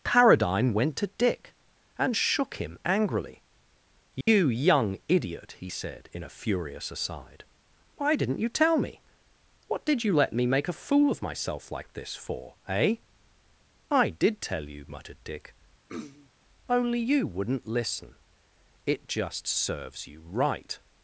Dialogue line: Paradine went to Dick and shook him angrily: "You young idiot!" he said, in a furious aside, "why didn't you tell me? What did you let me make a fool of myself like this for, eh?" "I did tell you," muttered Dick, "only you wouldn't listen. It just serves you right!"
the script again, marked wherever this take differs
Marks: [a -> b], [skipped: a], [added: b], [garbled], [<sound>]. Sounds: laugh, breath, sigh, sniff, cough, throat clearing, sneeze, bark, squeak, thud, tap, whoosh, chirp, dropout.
Paradine went to Dick and shook him angrily: "You [dropout] young idiot!" he said, in a furious aside, "why didn't you tell me? What did you let me make a fool of myself like this for, eh?" "I did tell you," muttered Dick, [throat clearing] "only you wouldn't listen. It just serves you right!"